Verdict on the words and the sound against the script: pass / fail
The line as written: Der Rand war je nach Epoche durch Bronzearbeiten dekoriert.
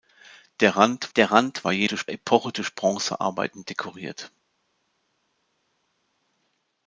fail